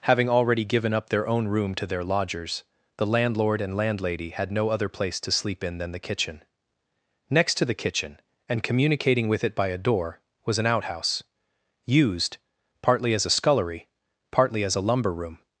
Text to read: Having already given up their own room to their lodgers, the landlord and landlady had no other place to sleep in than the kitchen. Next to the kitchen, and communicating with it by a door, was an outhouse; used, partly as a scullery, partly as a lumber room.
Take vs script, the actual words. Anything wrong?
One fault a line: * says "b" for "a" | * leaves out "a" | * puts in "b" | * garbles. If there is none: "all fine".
all fine